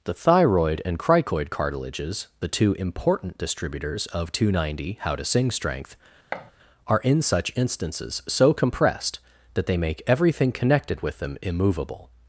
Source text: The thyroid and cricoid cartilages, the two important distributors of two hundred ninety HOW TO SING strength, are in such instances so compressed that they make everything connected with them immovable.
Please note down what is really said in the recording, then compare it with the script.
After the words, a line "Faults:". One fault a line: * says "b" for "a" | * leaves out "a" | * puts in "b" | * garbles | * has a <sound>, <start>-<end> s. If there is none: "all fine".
The thyroid and cricoid cartilages, the two important distributors of two hundred ninety HOW TO SING strength, are in such instances so compressed that they make everything connected with them immovable.
Faults:
* has a thud, 6.3-6.5 s